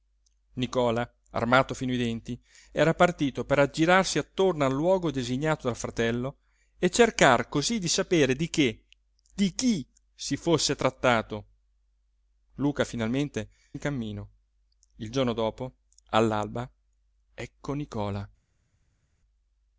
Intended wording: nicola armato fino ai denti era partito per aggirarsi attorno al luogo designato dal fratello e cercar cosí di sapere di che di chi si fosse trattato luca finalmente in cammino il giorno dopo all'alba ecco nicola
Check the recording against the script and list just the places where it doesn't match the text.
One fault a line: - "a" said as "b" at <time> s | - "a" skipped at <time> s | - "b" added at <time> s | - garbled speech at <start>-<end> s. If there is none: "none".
none